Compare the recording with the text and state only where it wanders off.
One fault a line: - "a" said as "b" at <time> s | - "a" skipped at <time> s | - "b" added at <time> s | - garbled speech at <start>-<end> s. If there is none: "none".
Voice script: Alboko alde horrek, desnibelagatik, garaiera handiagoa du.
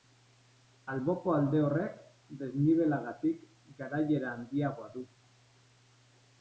none